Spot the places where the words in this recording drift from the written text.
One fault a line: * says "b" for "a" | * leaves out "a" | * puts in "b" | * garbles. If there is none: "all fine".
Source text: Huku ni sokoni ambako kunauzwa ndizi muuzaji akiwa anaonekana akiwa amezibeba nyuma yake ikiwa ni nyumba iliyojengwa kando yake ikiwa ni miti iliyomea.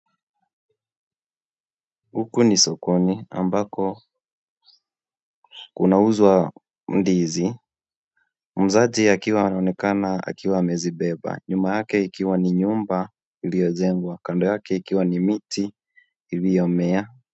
all fine